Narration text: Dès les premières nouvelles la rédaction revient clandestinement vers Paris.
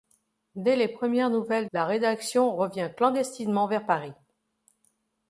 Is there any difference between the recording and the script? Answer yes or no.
no